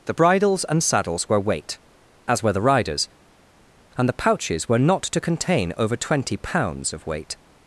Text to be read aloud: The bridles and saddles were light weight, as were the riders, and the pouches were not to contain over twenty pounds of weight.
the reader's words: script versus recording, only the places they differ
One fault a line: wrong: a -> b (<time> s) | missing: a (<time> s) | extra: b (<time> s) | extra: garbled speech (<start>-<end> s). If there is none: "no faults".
missing: light (1.4 s)